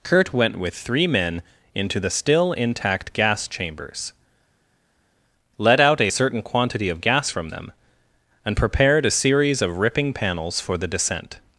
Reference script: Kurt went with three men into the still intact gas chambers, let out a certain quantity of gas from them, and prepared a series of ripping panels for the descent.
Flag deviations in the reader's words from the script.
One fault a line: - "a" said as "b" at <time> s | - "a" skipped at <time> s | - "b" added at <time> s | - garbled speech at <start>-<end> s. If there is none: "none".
none